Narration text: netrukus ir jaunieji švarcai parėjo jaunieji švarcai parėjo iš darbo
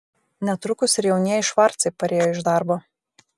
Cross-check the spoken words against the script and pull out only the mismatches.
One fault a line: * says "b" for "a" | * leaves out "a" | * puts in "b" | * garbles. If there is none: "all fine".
* leaves out "jaunieji švarcai parėjo"